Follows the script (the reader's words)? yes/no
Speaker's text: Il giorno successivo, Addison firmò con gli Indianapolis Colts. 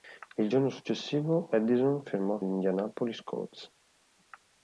no